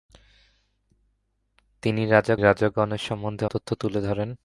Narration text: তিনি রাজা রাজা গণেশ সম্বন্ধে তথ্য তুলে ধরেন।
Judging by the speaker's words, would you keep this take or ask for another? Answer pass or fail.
pass